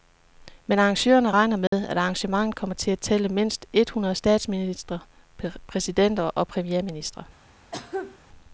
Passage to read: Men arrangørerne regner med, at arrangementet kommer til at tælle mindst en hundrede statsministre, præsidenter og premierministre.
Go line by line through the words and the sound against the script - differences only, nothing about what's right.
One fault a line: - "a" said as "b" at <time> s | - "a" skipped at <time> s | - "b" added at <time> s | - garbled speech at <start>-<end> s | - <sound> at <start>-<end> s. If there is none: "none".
- dropout at 1.7-1.7 s
- "en" said as "et" at 3.7 s
- cough at 7.7-8.2 s